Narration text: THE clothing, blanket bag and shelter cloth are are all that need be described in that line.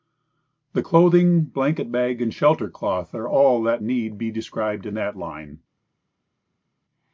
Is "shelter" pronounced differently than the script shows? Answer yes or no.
no